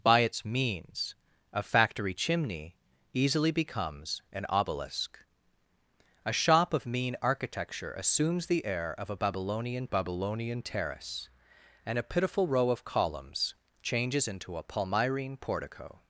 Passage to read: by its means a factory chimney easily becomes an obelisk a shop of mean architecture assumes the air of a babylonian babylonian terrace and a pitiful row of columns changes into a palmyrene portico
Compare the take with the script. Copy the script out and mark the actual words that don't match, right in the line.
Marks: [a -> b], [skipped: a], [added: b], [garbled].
by its means a factory chimney easily becomes an obelisk a shop of mean architecture assumes the air of a babylonian babylonian terrace and a pitiful row of columns changes into a palmyrene portico